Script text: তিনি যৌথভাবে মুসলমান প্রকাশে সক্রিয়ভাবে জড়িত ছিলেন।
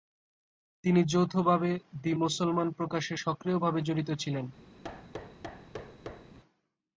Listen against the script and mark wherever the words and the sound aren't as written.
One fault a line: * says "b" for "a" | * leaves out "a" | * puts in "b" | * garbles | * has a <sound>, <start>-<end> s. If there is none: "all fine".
* puts in "দি"
* has a thud, 4.8-6.4 s